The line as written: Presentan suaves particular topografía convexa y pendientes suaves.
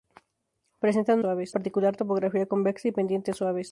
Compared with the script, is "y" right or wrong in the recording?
right